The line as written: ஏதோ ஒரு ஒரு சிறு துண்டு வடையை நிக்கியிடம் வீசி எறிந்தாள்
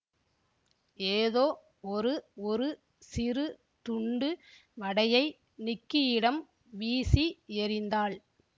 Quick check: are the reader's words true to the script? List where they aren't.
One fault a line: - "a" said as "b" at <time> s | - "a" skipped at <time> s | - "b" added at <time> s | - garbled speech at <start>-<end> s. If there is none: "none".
none